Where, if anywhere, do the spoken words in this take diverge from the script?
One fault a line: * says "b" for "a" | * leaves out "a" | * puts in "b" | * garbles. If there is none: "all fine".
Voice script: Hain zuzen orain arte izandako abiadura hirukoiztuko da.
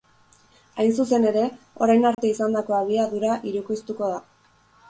* puts in "ere"